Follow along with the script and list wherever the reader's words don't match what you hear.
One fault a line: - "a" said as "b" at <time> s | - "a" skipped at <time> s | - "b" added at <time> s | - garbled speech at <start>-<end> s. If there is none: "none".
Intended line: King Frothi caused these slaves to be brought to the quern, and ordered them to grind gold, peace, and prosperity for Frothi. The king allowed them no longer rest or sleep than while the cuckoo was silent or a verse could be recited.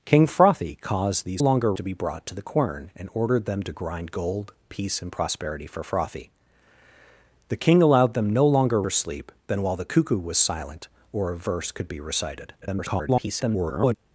- "slaves" said as "longer" at 1.4 s
- "rest" skipped at 8.8 s
- garbled speech at 12.6-14.0 s